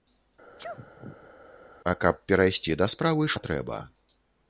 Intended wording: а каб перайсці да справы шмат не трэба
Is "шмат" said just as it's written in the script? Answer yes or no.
no